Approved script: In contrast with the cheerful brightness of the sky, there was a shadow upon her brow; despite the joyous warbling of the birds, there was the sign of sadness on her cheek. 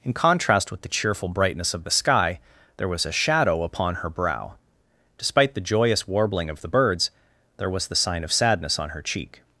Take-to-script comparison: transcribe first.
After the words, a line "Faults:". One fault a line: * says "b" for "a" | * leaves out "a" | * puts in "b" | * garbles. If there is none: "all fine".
In contrast with the cheerful brightness of the sky, there was a shadow upon her brow; despite the joyous warbling of the birds, there was the sign of sadness on her cheek.
Faults:
all fine